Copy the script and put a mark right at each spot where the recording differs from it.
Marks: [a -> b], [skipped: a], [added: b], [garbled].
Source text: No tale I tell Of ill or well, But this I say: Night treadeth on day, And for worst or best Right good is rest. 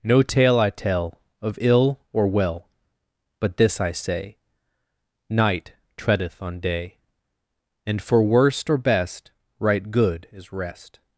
No tale I tell Of ill or well, But this I say: Night treadeth on day, And for worst or best Right good is rest.